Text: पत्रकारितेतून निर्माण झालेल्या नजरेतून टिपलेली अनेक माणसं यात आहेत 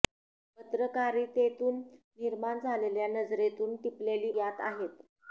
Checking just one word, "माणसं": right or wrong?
wrong